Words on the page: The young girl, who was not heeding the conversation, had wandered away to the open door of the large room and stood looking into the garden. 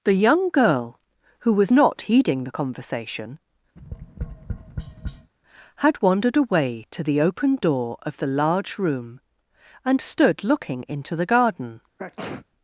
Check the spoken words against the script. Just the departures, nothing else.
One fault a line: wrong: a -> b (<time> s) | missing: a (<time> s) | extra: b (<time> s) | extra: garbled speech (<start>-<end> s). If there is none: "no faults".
no faults